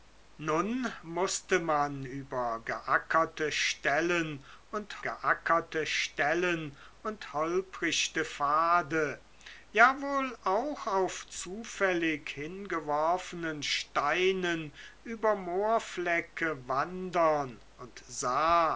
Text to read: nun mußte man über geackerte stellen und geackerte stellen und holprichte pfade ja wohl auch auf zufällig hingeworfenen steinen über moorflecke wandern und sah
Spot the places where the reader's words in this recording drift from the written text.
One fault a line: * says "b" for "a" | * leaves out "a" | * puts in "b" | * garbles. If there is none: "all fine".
all fine